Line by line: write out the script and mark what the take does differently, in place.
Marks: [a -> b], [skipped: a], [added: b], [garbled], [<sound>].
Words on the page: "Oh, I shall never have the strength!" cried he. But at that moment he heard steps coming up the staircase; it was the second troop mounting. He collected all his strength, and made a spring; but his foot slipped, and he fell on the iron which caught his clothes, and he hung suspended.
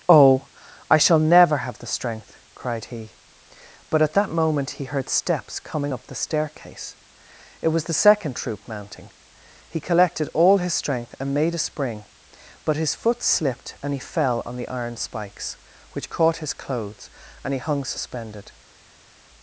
"Oh, I shall never have the strength!" cried he. But at that moment he heard steps coming up the staircase; it was the second troop mounting. He collected all his strength, and made a spring; but his foot slipped, and he fell on the iron [added: spikes] which caught his clothes, and he hung suspended.